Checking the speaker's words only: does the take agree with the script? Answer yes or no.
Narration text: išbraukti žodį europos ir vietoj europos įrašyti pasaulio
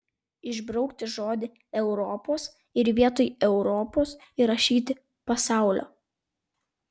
yes